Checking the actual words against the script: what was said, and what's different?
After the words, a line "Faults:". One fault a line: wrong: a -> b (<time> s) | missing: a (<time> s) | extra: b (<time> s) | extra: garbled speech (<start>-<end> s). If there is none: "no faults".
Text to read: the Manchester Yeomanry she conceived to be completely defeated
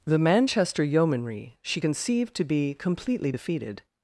the Manchester Yeomanry she conceived to be completely defeated
Faults:
no faults